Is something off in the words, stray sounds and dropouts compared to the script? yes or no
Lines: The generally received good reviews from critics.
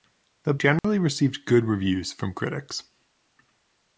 yes